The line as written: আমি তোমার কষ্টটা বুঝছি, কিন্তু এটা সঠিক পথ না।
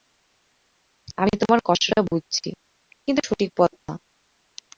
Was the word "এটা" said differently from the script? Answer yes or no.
yes